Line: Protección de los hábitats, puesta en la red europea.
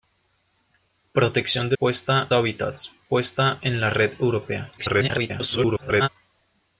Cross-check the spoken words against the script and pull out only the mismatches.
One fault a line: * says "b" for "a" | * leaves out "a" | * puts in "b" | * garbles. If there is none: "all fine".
* says "puesta" for "los"
* garbles